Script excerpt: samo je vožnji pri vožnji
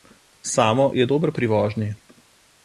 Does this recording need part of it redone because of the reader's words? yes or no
yes